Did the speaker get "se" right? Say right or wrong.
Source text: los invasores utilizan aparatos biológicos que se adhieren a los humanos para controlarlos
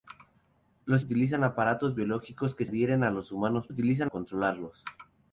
wrong